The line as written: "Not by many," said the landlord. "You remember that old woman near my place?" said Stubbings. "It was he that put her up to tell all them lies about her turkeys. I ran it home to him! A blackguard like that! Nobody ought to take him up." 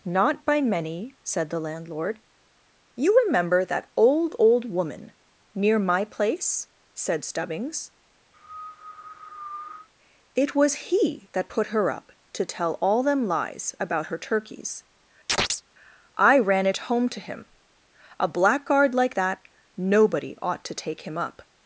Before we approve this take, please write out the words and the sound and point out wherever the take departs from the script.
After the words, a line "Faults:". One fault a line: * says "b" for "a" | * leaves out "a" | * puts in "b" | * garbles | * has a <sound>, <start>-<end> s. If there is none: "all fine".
"Not by many," said the landlord. "You remember that old old woman near my place?" said Stubbings. "It was he that put her up to tell all them lies about her turkeys. I ran it home to him! A blackguard like that! Nobody ought to take him up."
Faults:
* puts in "old"
* has a cough, 8.3-9.9 s
* has a chirp, 15.3-15.6 s